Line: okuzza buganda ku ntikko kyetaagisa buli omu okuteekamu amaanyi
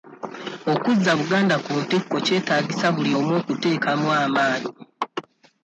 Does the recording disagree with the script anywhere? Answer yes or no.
no